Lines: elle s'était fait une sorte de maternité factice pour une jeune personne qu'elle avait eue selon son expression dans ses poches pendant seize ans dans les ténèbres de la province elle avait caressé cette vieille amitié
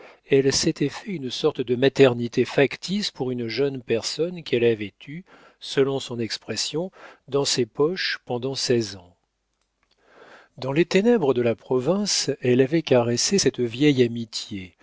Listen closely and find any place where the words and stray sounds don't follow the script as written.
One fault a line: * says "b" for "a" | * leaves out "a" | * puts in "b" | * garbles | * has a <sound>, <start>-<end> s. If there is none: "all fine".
all fine